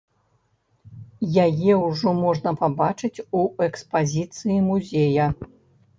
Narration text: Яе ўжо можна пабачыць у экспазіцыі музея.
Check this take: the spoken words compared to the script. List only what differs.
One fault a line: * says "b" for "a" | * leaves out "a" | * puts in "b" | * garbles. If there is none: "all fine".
all fine